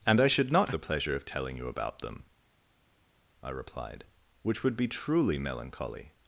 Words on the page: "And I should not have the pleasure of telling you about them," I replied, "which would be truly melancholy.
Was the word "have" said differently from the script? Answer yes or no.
yes